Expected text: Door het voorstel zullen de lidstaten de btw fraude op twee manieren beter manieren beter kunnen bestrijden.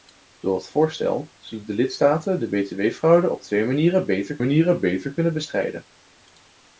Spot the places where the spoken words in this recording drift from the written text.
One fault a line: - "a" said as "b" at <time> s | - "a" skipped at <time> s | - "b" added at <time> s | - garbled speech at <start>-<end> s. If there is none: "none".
none